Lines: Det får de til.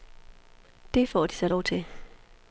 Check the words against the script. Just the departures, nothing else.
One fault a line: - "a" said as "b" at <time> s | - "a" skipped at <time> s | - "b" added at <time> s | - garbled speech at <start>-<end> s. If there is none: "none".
- "så lov" added at 1.3 s